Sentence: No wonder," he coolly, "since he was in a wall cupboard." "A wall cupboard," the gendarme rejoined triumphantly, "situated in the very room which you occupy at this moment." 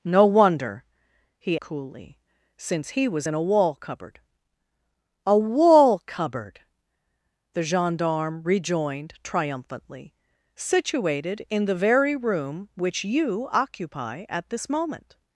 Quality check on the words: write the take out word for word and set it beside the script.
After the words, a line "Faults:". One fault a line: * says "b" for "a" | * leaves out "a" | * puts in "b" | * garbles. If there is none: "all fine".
No wonder," he coolly, "since he was in a wall cupboard." "A wall cupboard," the gendarme rejoined triumphantly, "situated in the very room which you occupy at this moment."
Faults:
all fine